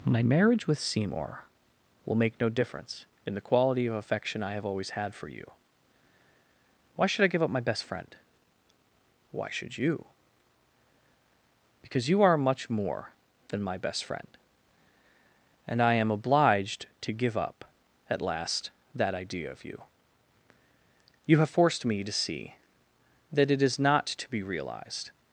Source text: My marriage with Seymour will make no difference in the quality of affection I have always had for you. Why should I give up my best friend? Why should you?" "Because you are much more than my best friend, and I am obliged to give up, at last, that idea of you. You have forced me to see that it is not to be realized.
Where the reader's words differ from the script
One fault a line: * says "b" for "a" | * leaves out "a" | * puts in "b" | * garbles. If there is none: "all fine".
all fine